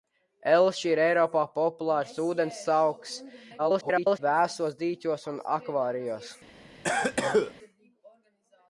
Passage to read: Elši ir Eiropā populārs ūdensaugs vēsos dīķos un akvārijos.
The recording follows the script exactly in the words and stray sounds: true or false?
false